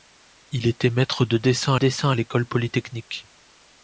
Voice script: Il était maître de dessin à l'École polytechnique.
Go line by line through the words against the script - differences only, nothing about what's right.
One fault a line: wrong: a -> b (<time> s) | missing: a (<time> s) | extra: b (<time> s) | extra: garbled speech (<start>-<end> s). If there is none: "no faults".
extra: dessin (1.7 s)